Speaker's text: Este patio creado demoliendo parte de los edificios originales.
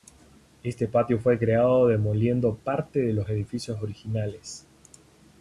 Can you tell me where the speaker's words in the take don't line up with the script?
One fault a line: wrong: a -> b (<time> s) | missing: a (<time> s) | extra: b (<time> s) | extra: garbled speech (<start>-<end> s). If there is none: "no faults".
extra: fue (1.2 s)